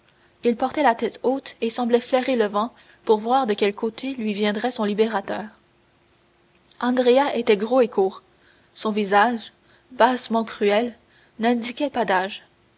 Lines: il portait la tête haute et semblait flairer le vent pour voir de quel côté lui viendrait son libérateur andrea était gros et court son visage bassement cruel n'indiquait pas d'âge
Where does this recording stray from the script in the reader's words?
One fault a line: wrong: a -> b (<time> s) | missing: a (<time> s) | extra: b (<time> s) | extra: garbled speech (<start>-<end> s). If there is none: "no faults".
no faults